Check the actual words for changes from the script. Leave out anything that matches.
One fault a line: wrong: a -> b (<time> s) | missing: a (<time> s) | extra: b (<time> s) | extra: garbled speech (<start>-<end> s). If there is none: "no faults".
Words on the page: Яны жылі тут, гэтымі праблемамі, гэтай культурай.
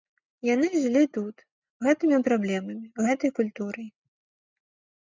no faults